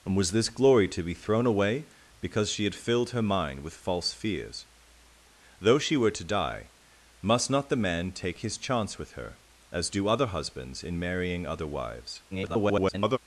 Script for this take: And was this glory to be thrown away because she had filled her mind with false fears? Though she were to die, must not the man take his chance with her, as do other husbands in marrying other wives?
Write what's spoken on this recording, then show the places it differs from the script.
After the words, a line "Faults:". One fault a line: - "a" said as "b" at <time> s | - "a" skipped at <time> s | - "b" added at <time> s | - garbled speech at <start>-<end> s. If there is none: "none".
And was this glory to be thrown away because she had filled her mind with false fears? Though she were to die, must not the man take his chance with her, as do other husbands in marrying other wives? [garbled]
Faults:
- garbled speech at 12.3-13.2 s